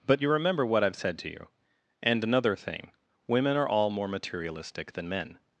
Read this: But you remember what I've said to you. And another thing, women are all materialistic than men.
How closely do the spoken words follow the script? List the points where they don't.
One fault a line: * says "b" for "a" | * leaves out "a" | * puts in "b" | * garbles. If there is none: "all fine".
* puts in "more"